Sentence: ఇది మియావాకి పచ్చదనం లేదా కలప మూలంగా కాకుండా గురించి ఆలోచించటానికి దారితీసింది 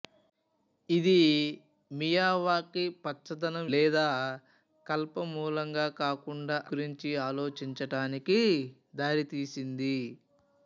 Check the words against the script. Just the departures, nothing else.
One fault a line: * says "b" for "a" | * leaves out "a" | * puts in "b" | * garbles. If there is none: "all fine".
all fine